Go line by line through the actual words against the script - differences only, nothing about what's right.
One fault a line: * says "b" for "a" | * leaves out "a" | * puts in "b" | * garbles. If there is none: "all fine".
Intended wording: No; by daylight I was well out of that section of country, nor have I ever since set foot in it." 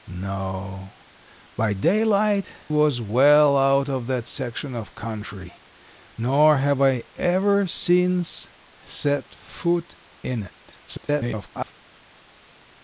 * leaves out "I"
* garbles